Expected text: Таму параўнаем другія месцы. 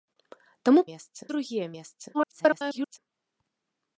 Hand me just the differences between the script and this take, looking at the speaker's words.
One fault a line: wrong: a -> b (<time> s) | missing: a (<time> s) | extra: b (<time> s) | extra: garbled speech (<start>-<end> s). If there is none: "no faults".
wrong: параўнаем -> месцы (0.9 s)
extra: garbled speech (2.1-3.0 s)